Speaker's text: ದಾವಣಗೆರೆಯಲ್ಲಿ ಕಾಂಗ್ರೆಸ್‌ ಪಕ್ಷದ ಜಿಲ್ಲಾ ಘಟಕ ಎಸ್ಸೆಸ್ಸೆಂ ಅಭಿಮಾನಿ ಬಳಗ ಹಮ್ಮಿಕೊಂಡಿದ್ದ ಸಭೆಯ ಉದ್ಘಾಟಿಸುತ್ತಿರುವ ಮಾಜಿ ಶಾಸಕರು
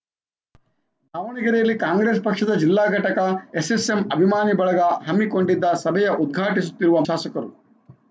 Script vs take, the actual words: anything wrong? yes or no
yes